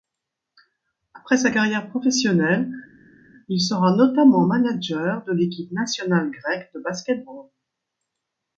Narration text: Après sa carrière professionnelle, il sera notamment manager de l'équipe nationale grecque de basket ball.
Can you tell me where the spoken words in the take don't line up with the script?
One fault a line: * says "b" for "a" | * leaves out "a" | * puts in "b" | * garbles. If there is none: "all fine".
all fine